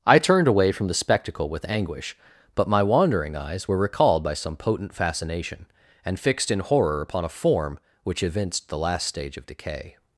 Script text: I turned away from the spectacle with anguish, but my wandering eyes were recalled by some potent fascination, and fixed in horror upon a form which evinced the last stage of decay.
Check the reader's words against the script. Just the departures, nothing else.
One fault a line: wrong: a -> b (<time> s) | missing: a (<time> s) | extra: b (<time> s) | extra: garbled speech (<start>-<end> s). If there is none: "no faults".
no faults